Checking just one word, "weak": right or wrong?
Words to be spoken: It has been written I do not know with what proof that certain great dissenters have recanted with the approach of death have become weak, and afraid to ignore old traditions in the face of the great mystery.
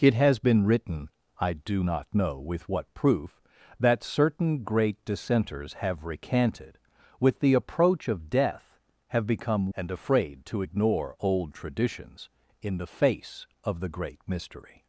wrong